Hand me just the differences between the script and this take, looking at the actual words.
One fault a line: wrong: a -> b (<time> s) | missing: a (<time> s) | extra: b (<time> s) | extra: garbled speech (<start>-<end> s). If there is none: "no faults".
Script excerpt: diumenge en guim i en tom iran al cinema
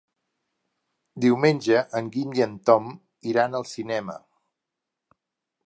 no faults